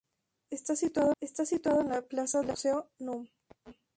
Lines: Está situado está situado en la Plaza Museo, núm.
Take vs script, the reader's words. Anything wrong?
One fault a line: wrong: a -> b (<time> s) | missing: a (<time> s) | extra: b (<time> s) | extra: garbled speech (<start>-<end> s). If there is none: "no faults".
no faults